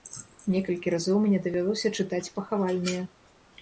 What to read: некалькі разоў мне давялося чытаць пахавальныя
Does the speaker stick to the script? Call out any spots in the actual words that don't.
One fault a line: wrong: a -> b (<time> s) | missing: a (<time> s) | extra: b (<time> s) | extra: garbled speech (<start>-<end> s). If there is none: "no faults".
no faults